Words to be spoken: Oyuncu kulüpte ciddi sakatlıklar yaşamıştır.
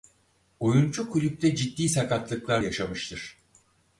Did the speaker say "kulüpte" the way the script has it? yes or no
yes